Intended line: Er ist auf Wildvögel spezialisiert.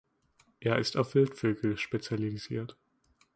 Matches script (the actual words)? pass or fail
pass